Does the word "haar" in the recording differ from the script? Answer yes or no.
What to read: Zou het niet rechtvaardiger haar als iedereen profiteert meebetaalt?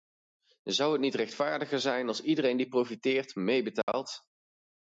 yes